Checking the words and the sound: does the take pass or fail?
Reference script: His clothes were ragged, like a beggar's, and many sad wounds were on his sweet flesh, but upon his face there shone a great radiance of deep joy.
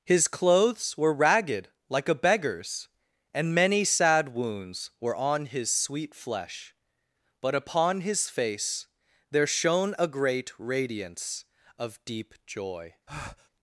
fail